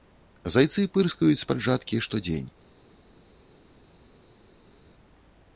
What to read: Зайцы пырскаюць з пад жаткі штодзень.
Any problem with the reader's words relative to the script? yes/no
no